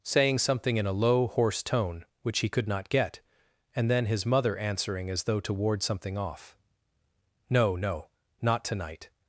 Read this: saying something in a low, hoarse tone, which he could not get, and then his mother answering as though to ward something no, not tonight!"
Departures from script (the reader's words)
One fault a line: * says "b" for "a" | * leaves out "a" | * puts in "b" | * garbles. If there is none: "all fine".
* puts in "off No"